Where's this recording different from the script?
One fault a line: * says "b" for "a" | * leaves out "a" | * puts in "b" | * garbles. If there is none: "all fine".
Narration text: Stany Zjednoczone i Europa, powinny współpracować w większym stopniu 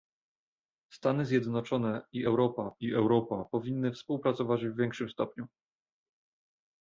* puts in "i Europa"